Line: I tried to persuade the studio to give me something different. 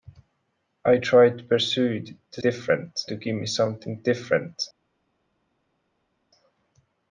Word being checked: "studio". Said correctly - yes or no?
no